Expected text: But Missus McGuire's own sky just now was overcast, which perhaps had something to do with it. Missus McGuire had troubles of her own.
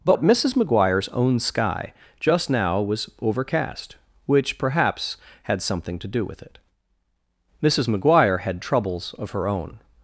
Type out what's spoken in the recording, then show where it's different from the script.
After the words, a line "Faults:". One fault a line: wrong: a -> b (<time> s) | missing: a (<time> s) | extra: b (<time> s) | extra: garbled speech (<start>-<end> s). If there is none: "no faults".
But Missus McGuire's own sky just now was overcast, which perhaps had something to do with it. Missus McGuire had troubles of her own.
Faults:
no faults